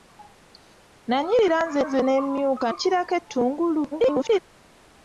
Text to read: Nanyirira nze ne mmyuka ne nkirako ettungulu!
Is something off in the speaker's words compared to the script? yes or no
yes